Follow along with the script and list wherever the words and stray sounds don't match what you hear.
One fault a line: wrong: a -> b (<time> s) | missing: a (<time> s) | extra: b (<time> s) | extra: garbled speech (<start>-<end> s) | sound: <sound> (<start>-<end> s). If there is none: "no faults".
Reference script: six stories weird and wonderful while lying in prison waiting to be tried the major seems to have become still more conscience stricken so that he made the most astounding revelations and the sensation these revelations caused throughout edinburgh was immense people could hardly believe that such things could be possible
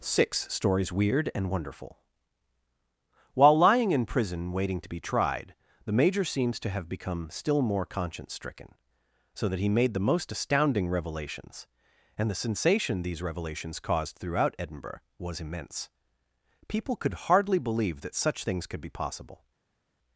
no faults